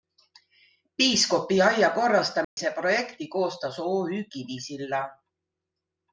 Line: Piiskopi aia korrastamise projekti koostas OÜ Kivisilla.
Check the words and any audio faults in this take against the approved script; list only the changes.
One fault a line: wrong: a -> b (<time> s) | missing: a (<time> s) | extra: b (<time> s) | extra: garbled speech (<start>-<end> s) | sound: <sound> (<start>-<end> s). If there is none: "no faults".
sound: dropout (2.4-2.6 s)